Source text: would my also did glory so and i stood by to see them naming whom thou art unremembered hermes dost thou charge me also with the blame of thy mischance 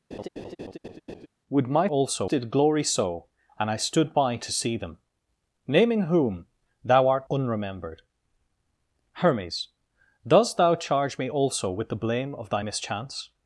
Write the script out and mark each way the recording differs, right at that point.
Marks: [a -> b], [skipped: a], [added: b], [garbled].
would my also did glory so and i stood by to see them naming whom thou art unremembered hermes dost thou charge me also with the blame of thy mischance